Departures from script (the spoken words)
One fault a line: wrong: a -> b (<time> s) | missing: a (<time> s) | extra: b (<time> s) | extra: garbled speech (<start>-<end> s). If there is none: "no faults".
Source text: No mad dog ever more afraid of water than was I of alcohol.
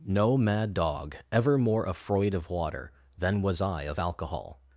no faults